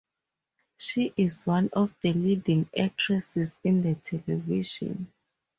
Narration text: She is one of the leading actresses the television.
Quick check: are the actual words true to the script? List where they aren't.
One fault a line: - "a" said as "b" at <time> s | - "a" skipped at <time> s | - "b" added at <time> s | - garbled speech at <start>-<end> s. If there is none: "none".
- "in" added at 3.7 s